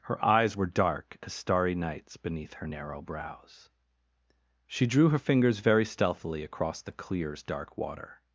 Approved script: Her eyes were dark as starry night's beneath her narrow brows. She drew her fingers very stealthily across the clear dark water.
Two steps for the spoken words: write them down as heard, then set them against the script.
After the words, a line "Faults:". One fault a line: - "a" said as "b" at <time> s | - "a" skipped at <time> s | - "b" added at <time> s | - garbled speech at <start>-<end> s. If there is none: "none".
Her eyes were dark as starry night's beneath her narrow brows. She drew her fingers very stealthily across the clears dark water.
Faults:
- "clear" said as "clears" at 6.9 s